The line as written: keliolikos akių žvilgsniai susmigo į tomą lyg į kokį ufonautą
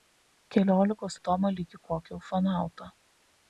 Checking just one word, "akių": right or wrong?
wrong